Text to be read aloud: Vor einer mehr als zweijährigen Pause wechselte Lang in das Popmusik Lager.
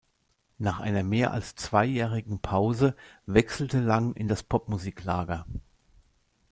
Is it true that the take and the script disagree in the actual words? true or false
true